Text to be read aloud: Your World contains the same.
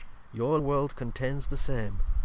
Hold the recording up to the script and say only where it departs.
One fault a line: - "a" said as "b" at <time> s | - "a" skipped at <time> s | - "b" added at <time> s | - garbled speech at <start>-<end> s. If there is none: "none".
none